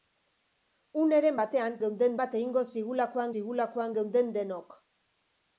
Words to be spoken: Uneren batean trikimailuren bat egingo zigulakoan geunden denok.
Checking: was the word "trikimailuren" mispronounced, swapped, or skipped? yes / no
yes